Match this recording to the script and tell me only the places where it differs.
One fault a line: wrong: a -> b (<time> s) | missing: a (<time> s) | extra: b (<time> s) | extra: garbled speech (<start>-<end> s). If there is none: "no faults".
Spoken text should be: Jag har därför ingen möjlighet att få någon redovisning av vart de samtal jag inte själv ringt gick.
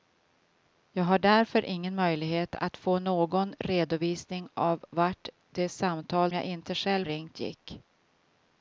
no faults